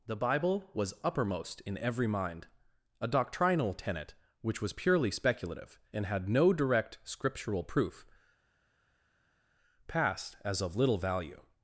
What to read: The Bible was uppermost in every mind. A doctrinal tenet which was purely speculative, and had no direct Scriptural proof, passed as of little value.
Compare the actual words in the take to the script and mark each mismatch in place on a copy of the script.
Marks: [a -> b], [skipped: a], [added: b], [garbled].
The Bible was uppermost in every mind. A doctrinal tenet which was purely speculative, and had no direct Scriptural proof, passed as of little value.